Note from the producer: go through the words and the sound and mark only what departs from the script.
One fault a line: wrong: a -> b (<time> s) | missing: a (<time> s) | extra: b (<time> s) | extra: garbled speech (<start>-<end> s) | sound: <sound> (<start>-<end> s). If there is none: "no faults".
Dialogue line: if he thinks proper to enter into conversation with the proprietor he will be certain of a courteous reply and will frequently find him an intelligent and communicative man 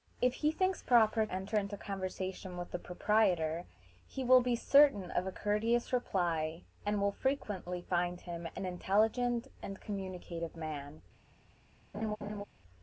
missing: to (1.3 s)
sound: laugh (11.9-12.4 s)